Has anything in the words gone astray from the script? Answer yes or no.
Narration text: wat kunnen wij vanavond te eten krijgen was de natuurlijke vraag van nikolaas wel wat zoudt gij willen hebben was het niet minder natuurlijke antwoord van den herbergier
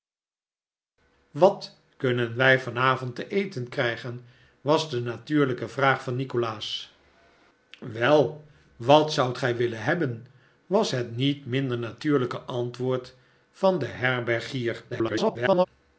yes